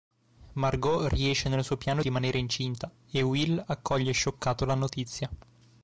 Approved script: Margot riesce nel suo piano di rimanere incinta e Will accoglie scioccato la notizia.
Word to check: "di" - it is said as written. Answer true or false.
false